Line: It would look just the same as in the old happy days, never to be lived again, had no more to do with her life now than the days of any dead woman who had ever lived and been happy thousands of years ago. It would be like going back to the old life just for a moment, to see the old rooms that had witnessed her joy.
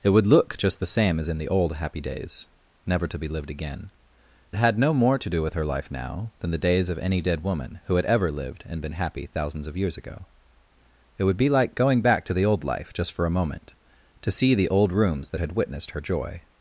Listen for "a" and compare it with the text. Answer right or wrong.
right